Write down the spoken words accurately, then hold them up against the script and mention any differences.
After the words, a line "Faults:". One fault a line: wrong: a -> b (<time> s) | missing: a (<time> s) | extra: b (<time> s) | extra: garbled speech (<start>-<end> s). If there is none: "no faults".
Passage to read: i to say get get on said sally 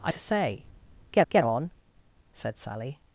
i to say get get on said sally
Faults:
no faults